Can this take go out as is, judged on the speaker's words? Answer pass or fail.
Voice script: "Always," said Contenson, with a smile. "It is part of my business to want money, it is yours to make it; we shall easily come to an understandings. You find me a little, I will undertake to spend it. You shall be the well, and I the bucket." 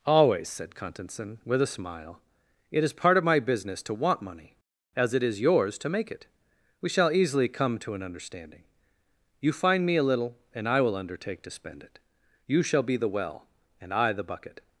fail